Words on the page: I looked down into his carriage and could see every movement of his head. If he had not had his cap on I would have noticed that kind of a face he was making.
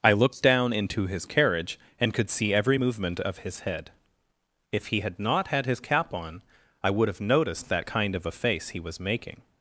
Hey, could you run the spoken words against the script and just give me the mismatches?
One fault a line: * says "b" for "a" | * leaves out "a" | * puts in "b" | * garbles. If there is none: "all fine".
all fine